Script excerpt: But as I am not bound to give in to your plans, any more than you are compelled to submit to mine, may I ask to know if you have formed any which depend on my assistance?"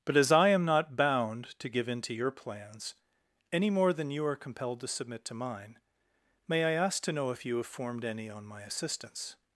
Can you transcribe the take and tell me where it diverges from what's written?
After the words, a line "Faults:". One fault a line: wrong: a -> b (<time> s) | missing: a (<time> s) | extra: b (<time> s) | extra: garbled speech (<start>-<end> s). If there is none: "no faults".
But as I am not bound to give in to your plans, any more than you are compelled to submit to mine, may I ask to know if you have formed any on my assistance?"
Faults:
missing: which depend (8.3 s)